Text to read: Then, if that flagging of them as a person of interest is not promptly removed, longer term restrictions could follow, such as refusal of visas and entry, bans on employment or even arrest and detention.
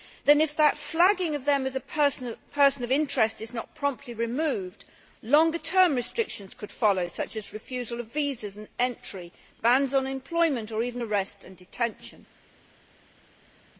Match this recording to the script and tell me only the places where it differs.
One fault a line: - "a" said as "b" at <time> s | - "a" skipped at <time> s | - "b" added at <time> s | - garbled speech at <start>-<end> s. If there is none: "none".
none